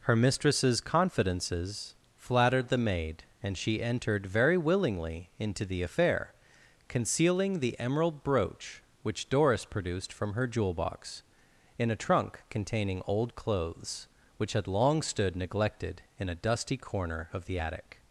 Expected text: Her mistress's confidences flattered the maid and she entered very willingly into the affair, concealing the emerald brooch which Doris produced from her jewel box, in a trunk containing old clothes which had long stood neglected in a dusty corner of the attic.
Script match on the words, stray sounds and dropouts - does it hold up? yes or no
yes